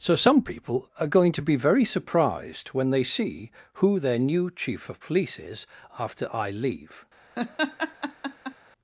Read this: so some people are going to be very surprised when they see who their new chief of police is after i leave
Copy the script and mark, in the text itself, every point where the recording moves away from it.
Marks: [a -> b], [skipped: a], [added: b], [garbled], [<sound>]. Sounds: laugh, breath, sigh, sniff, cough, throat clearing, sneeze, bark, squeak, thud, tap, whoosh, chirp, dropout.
so some people are going to be very surprised when they see who their new chief of police is after i leave [laugh]